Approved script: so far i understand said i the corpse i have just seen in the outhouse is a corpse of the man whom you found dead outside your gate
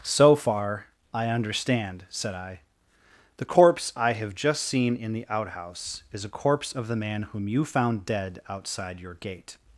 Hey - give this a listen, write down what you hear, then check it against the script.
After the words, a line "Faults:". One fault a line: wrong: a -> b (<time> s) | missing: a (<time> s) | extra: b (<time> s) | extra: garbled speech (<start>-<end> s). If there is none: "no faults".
so far i understand said i the corpse i have just seen in the outhouse is a corpse of the man whom you found dead outside your gate
Faults:
no faults